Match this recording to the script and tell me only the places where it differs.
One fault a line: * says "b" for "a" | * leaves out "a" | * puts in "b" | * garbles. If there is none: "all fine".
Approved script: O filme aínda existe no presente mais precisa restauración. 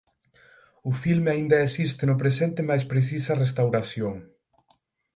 all fine